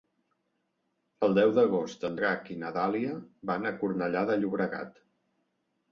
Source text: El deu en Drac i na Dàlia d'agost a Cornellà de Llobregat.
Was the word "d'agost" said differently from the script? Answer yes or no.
yes